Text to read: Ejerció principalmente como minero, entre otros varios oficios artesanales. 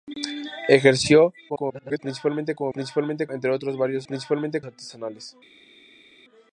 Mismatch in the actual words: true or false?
true